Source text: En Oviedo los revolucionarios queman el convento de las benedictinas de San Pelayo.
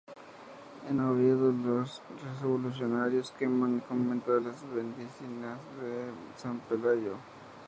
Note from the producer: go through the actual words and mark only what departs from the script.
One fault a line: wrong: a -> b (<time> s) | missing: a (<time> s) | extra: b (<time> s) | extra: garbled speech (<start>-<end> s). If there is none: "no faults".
no faults